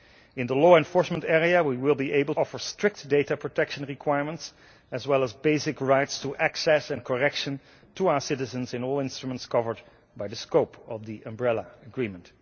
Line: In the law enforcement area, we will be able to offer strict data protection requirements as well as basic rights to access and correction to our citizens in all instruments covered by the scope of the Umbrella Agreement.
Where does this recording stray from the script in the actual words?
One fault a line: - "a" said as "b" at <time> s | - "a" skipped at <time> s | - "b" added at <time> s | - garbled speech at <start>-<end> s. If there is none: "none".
- "to" skipped at 2.4 s